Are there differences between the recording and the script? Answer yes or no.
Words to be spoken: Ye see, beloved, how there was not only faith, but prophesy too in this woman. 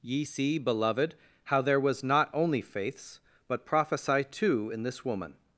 yes